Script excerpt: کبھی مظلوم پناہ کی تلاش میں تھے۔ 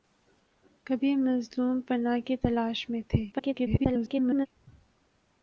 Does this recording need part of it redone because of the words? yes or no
yes